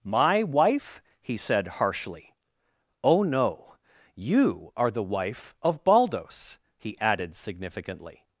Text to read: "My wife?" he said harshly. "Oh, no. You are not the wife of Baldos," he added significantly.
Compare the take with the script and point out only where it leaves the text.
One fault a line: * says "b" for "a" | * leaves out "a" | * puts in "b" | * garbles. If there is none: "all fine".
* leaves out "not"